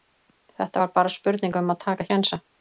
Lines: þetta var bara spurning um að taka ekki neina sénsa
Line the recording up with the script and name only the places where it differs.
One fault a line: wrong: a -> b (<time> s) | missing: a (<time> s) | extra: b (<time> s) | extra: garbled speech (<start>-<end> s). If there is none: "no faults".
missing: ekki neina (2.1 s)